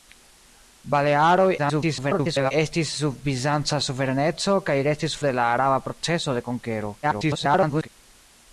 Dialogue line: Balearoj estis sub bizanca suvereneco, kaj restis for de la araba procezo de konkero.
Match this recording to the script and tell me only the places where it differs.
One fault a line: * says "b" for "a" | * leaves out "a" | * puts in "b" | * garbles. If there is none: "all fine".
* garbles
* leaves out "for"
* garbles